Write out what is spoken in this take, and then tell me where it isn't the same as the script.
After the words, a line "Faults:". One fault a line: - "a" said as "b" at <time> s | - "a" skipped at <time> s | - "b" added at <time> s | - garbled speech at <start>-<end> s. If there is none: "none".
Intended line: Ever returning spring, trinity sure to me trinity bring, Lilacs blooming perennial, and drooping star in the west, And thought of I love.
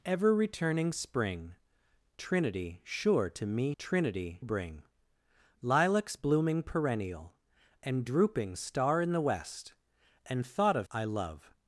Ever returning spring, trinity sure to me trinity bring, Lilacs blooming perennial, and drooping star in the west, And thought of I love.
Faults:
none